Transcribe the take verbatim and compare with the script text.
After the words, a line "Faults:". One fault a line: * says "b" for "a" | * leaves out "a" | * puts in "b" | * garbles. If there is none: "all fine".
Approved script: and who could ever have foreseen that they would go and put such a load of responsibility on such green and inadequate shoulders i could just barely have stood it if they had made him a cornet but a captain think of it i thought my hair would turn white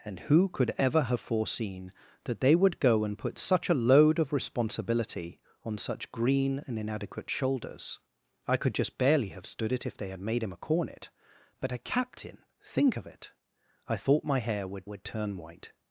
and who could ever have foreseen that they would go and put such a load of responsibility on such green and inadequate shoulders i could just barely have stood it if they had made him a cornet but a captain think of it i thought my hair would would turn white
Faults:
* puts in "would"